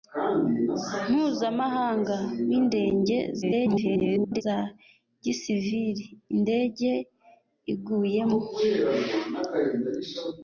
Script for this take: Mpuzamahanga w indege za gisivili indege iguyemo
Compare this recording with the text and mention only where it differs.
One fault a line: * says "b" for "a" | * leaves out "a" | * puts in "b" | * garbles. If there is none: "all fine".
* garbles